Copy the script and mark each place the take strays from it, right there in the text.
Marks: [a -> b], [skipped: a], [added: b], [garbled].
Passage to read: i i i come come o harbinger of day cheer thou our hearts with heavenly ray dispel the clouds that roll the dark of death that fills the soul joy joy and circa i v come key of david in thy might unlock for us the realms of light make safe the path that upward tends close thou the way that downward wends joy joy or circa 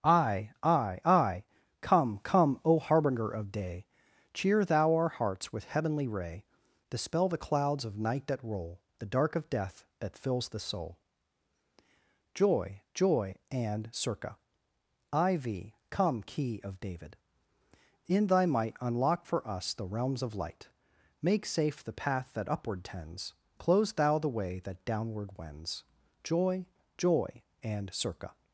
i i i come come o harbinger of day cheer thou our hearts with heavenly ray dispel the clouds [added: of night] that roll the dark of death that fills the soul joy joy and circa i v come key of david in thy might unlock for us the realms of light make safe the path that upward tends close thou the way that downward wends joy joy [or -> and] circa